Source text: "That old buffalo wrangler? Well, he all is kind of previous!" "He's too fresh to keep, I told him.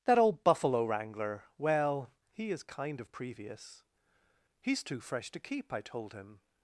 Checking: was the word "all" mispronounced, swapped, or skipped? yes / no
yes